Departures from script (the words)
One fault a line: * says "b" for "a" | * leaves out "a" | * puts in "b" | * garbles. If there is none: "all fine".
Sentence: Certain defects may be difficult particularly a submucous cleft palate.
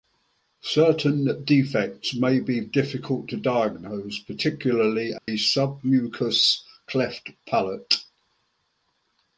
* puts in "to diagnose"